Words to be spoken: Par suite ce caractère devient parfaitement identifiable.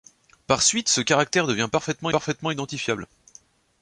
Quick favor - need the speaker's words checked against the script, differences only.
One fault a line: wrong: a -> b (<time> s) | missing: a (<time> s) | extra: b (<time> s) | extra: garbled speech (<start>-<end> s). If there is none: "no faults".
extra: parfaitement (2.1 s)